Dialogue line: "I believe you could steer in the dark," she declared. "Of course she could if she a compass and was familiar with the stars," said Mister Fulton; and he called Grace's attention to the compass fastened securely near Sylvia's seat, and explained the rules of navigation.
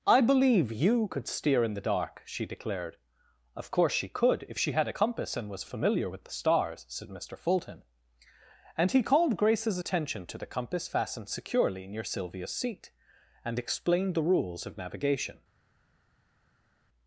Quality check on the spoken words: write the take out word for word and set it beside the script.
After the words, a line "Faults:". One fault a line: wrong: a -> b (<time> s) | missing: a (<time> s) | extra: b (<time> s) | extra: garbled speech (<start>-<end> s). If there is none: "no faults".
"I believe you could steer in the dark," she declared. "Of course she could if she had a compass and was familiar with the stars," said Mister Fulton; and he called Grace's attention to the compass fastened securely near Sylvia's seat, and explained the rules of navigation.
Faults:
extra: had (4.7 s)